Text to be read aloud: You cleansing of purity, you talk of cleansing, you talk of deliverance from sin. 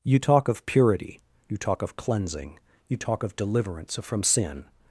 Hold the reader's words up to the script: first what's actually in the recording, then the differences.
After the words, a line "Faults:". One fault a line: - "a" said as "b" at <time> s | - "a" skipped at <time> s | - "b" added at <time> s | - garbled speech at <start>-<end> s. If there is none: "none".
You talk of purity, you talk of cleansing, you talk of deliverance from sin.
Faults:
- "cleansing" said as "talk" at 0.2 s